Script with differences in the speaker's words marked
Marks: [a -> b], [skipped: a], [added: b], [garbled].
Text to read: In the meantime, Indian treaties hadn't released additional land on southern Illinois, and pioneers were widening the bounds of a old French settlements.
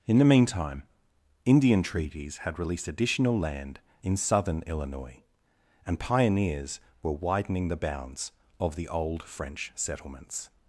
In the meantime, Indian treaties [hadn't -> had] released additional land [on -> in] southern Illinois, and pioneers were widening the bounds of [a -> the] old French settlements.